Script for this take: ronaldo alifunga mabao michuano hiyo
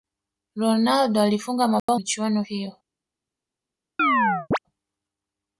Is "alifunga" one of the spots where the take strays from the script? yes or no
no